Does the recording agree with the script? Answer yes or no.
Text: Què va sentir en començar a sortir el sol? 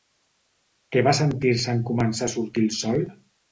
no